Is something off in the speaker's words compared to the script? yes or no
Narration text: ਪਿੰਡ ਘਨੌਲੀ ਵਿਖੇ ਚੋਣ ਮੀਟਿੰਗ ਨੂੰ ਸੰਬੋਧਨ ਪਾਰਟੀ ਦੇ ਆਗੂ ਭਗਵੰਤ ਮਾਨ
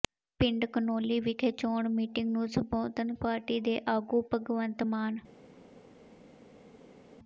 no